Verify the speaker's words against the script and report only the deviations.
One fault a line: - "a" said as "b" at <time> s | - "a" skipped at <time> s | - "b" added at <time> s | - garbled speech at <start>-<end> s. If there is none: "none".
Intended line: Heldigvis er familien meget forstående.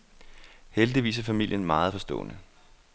none